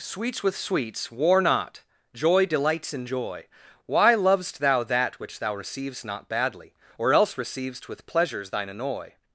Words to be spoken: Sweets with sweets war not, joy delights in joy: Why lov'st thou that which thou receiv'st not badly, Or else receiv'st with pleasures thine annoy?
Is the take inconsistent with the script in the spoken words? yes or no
no